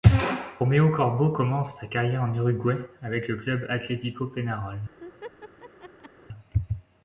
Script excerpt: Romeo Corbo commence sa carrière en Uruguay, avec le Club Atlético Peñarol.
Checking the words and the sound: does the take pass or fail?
fail